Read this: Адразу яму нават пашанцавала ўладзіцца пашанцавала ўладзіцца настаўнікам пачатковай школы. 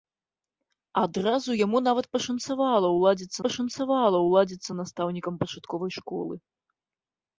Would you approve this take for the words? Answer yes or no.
yes